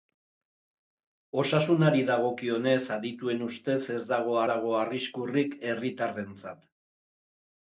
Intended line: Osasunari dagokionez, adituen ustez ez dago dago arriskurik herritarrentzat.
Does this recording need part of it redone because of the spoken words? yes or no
no